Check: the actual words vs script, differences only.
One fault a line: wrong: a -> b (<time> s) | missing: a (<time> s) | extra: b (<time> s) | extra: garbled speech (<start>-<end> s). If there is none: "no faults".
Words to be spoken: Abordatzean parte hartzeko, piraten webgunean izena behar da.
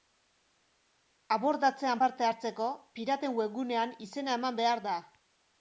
extra: eman (4.4 s)